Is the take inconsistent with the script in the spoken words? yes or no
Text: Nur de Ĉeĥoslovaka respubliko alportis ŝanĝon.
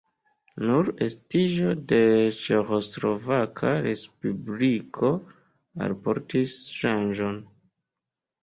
yes